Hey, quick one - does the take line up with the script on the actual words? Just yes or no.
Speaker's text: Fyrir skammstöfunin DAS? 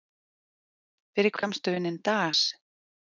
yes